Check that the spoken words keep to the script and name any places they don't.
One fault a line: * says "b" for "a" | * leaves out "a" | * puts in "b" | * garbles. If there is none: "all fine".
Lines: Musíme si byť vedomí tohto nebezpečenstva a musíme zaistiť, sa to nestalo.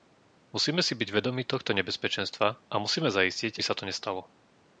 all fine